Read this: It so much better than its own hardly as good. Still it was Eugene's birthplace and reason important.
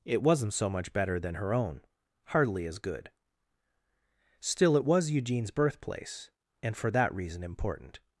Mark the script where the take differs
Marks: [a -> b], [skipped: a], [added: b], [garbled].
It [added: wasn't] so much better than [its -> her] own hardly as good. Still it was Eugene's birthplace and [added: for that] reason important.